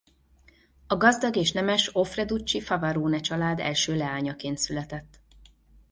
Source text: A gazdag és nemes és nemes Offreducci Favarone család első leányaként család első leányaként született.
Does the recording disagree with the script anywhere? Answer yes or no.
yes